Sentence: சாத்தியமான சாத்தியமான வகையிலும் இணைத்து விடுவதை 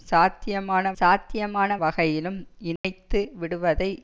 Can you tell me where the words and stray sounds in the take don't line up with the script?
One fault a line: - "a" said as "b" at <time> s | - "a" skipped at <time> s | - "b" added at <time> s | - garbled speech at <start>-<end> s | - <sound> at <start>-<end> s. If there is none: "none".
- dropout at 2.8-2.8 s